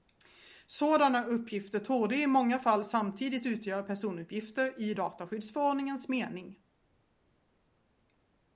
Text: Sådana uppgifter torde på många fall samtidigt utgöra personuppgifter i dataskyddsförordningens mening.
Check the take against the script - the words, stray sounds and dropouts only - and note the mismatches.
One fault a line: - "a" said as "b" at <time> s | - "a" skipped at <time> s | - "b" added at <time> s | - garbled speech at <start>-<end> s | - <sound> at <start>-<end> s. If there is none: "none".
- "på" said as "i" at 2.1 s